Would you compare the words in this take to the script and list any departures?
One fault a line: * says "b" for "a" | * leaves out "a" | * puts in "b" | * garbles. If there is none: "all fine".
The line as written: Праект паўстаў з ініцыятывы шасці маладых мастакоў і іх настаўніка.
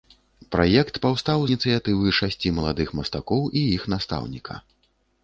* leaves out "з"